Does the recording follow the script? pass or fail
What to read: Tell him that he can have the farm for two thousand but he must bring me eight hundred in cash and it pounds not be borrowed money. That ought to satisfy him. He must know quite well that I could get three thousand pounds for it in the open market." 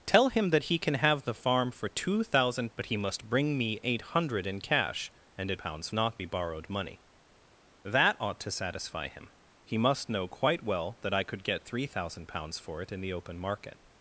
pass